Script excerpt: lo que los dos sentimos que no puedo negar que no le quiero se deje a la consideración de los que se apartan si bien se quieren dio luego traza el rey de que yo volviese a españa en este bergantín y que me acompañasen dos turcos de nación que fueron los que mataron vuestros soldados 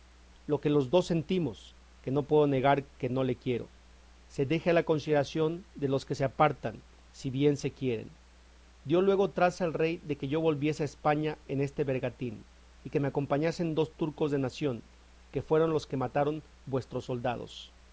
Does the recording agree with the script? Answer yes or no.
yes